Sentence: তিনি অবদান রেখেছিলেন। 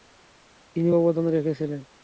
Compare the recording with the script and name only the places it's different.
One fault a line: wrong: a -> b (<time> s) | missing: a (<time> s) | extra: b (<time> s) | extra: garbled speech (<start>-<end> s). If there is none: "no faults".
no faults